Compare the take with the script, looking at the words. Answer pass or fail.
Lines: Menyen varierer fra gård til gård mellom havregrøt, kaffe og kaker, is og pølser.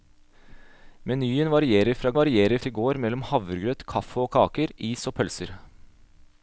fail